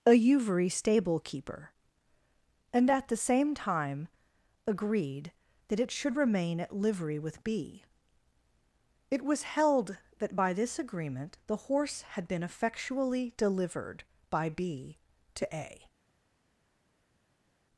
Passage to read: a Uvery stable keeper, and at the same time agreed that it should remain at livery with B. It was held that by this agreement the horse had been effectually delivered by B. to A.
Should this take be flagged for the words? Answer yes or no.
no